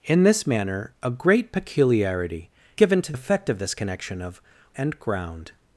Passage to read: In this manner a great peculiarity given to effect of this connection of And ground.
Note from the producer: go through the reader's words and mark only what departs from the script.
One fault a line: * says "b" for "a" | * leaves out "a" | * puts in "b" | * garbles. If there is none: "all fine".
all fine